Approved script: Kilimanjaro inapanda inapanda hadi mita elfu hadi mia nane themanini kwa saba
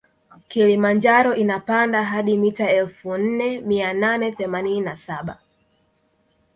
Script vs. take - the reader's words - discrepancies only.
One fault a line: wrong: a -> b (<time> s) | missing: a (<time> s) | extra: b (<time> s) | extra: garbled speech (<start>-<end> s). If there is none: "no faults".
missing: inapanda (2.0 s)
wrong: hadi -> nne (3.2 s)
wrong: kwa -> na (4.8 s)